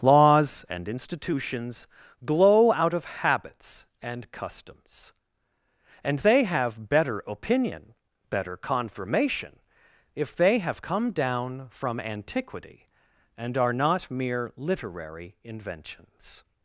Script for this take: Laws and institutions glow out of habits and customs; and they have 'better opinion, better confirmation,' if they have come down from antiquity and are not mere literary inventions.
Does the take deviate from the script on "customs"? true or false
false